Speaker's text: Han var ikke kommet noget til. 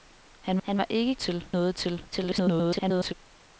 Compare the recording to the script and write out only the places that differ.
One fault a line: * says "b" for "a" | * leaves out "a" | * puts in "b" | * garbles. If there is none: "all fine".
* puts in "han"
* says "til" for "kommet"
* garbles